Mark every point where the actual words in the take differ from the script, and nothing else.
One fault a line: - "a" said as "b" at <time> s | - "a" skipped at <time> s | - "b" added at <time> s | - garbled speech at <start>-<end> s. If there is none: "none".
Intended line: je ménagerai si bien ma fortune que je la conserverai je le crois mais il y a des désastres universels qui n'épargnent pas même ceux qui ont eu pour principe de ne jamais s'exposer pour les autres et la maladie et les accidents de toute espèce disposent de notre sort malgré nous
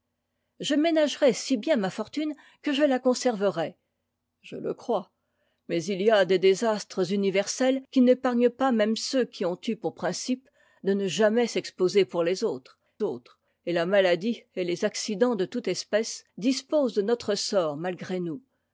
- "autres" added at 13.0 s